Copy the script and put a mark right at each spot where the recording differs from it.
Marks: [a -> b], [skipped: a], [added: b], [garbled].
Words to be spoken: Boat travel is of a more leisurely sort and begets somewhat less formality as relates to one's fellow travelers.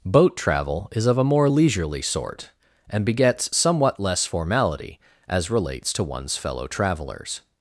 Boat travel is of a more leisurely sort and begets somewhat less formality as relates to one's fellow travelers.